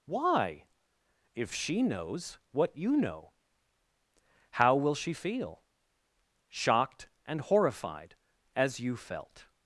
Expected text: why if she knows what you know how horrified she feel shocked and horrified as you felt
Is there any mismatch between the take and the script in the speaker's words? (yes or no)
yes